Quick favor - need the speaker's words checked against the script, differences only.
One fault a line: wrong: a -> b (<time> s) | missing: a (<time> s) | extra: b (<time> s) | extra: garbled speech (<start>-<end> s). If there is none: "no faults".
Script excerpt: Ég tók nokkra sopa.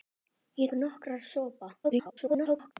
missing: tók (0.7 s)
extra: garbled speech (1.8-2.7 s)